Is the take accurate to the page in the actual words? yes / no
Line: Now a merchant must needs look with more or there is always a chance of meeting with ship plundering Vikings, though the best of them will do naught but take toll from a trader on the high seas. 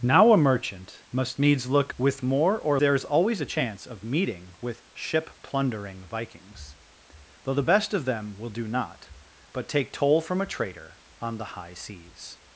yes